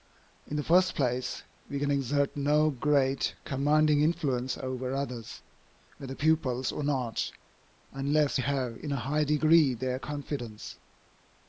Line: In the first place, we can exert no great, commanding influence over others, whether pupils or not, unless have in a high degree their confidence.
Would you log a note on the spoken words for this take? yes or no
no